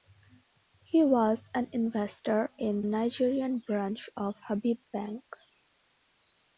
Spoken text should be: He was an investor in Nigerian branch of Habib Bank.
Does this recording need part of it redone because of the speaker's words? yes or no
no